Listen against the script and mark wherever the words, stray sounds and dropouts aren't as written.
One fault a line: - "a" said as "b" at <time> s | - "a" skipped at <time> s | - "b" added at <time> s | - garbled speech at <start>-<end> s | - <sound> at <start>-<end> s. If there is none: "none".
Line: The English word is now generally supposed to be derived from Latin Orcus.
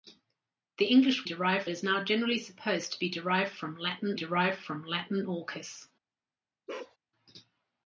- "word" said as "derived" at 1.3 s
- "derived from Latin" added at 4.2 s
- bark at 6.7-7.0 s